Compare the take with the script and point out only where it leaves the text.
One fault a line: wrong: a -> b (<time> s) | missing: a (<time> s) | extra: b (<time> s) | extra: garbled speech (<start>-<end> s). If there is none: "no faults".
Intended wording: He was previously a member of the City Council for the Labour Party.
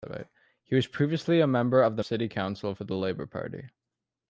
no faults